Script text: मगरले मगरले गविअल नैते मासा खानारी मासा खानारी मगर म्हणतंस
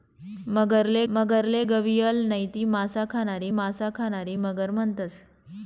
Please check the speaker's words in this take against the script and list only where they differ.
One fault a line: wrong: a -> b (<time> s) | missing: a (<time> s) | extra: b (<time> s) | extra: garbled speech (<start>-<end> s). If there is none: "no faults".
no faults